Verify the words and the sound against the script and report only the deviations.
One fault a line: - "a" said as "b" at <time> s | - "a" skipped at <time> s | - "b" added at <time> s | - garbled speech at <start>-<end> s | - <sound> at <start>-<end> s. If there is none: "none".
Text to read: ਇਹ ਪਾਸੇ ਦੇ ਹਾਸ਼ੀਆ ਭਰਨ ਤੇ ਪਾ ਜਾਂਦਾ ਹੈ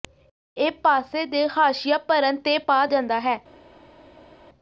none